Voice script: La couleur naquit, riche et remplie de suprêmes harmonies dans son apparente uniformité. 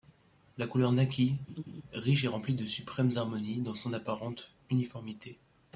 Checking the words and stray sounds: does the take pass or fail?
fail